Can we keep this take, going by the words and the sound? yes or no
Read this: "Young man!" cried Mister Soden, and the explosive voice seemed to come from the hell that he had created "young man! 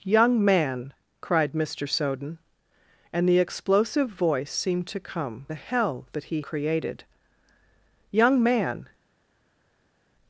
no